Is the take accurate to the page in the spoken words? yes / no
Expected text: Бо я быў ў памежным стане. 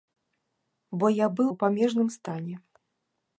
yes